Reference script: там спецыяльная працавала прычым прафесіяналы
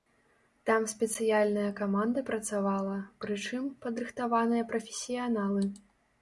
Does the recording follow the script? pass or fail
fail